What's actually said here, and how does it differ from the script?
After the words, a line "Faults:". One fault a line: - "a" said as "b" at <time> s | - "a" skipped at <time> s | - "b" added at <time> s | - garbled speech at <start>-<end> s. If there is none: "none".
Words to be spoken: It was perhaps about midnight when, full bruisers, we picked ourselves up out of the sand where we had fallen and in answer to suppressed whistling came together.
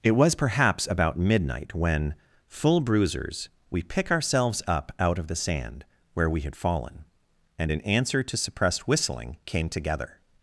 It was perhaps about midnight when, full bruisers, we pick ourselves up out of the sand where we had fallen and in answer to suppressed whistling came together.
Faults:
- "picked" said as "pick" at 3.8 s